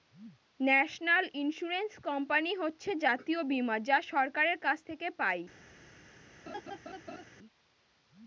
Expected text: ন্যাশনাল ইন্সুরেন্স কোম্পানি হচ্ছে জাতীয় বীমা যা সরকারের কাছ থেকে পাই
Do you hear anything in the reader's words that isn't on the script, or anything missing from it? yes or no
no